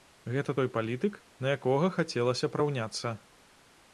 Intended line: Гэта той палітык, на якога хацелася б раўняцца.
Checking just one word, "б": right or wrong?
right